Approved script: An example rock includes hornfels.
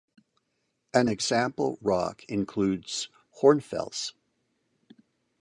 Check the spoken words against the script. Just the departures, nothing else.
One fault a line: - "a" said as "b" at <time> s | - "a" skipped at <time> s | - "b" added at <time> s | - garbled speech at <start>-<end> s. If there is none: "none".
none